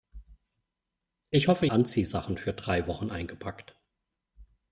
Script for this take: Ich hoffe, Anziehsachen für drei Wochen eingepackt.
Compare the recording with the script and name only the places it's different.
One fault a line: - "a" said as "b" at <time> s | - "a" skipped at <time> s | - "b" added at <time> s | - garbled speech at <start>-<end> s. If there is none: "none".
none